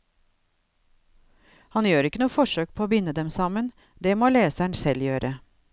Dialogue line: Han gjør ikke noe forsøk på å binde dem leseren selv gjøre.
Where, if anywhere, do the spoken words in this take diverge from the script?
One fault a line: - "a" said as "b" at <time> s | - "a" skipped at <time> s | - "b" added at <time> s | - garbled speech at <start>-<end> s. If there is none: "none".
- "sammen det må" added at 3.3 s